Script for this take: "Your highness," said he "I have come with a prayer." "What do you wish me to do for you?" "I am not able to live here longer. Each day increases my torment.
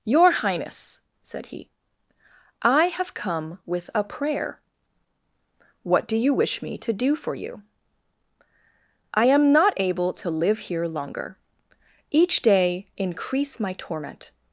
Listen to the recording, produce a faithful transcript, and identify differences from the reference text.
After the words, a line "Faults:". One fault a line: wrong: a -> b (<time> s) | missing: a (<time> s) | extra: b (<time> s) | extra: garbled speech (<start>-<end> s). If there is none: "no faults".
"Your highness," said he "I have come with a prayer." "What do you wish me to do for you?" "I am not able to live here longer. Each day increase my torment.
Faults:
wrong: increases -> increase (13.0 s)